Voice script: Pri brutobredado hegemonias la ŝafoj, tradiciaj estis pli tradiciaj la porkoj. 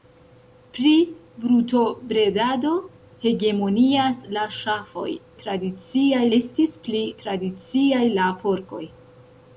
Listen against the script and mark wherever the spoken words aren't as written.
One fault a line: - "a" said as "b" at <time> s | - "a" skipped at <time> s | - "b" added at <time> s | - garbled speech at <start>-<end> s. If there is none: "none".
none